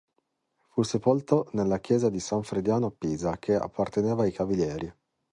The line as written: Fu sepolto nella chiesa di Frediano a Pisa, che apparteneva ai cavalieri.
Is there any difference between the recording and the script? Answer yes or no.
yes